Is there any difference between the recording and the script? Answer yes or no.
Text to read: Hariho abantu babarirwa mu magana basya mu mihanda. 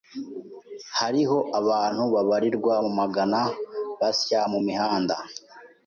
no